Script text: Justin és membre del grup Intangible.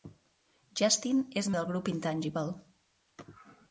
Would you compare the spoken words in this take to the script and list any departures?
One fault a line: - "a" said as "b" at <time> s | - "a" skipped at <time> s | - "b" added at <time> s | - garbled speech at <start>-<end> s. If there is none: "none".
- "membre" skipped at 1.5 s